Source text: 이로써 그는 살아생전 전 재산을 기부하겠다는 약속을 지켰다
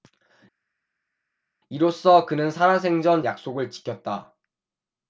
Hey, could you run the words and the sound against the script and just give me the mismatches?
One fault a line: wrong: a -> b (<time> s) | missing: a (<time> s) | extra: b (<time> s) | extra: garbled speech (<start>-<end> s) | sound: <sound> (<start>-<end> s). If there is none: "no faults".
missing: 전 재산을 기부하겠다는 (3.2 s)